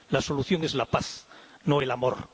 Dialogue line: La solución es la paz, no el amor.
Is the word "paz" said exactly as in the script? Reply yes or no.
yes